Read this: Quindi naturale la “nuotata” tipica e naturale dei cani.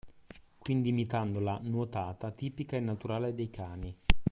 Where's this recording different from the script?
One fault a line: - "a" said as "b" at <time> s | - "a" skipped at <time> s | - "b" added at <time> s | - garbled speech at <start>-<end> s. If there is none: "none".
- "naturale" said as "imitando" at 0.9 s